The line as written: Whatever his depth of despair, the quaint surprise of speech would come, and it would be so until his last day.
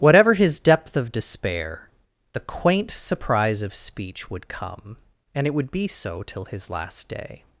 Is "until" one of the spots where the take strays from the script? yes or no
yes